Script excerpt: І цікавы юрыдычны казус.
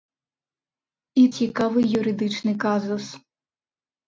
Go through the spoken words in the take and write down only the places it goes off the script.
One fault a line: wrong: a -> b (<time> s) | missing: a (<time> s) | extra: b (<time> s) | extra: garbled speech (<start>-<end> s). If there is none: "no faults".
no faults